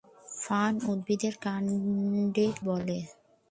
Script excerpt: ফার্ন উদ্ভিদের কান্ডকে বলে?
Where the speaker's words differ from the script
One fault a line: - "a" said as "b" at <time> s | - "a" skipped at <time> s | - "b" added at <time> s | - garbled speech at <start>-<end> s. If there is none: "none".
none